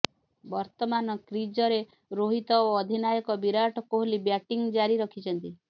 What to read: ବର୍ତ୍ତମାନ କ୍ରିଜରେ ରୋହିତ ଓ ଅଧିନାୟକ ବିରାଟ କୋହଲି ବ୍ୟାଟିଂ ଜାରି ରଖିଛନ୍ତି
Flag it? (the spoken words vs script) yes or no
no